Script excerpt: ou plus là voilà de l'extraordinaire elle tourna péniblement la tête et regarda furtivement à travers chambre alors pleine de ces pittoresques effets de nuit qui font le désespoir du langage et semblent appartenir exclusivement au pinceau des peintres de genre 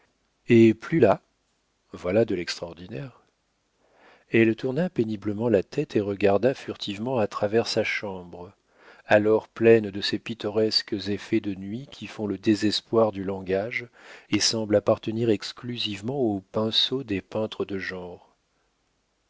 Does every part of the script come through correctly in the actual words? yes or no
no